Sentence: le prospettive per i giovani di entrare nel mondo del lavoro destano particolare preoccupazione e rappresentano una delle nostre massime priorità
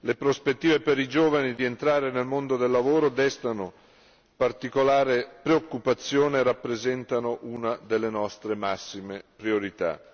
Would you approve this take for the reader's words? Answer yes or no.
yes